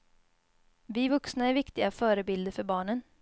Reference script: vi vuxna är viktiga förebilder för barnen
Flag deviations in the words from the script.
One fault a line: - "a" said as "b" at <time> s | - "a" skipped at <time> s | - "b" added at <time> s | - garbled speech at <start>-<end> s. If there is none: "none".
none